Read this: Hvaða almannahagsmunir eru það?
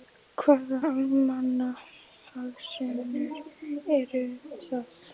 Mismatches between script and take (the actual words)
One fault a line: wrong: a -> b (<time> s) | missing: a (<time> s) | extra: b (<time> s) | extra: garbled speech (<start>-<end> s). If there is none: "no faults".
no faults